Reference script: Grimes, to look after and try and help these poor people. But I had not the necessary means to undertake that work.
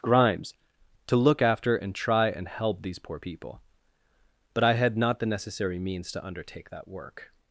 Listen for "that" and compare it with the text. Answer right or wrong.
right